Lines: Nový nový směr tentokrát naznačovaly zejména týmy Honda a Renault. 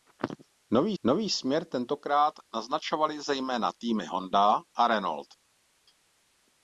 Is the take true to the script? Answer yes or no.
yes